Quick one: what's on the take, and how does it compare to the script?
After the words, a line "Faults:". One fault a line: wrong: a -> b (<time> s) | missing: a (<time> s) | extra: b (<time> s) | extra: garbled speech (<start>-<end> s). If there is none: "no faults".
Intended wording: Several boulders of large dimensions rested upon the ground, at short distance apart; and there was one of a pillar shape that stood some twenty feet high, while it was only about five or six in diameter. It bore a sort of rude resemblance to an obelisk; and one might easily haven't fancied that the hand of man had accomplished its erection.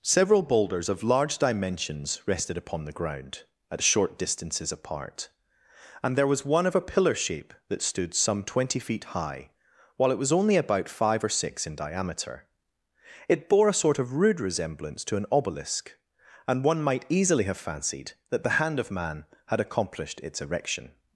Several boulders of large dimensions rested upon the ground, at short distances apart; and there was one of a pillar shape that stood some twenty feet high, while it was only about five or six in diameter. It bore a sort of rude resemblance to an obelisk; and one might easily have fancied that the hand of man had accomplished its erection.
Faults:
wrong: distance -> distances (4.2 s)
wrong: haven't -> have (17.4 s)